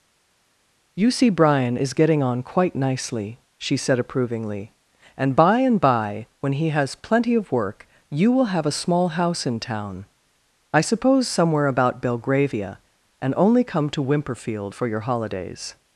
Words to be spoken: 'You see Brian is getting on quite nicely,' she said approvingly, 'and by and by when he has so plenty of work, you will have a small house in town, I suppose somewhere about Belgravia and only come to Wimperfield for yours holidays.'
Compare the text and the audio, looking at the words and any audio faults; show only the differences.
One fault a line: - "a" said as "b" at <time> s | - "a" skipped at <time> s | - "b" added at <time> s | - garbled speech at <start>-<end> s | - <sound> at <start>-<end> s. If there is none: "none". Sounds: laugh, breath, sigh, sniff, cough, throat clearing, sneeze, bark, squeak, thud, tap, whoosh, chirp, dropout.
- "so" skipped at 7.0 s
- "yours" said as "your" at 14.9 s